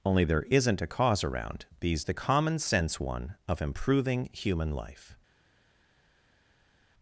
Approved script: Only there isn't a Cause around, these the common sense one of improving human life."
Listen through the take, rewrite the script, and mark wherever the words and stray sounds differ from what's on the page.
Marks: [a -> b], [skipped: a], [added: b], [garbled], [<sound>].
Only there isn't a Cause around, these the common sense one of improving human life."